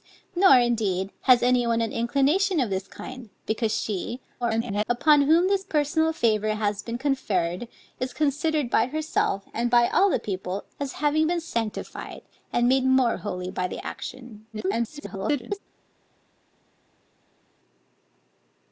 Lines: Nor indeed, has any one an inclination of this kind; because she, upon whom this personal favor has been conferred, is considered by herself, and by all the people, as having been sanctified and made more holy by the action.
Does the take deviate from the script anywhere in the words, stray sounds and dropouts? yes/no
yes